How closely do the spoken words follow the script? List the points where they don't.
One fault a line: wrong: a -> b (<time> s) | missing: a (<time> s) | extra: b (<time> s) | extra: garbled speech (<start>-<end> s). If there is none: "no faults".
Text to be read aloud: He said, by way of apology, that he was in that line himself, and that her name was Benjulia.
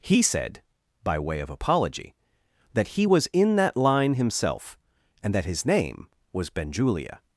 wrong: her -> his (5.5 s)